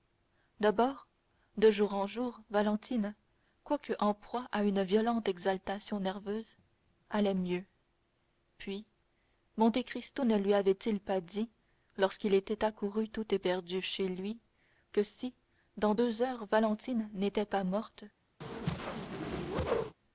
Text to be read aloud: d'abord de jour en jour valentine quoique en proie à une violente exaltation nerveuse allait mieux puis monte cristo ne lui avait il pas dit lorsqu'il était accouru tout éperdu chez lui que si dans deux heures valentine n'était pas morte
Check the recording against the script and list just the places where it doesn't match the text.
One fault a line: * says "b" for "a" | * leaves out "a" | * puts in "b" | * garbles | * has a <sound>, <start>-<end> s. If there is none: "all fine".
* has a whoosh, 18.4-20.0 s